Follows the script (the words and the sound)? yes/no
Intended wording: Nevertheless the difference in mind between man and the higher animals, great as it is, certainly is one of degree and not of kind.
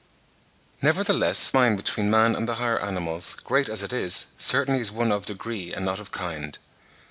no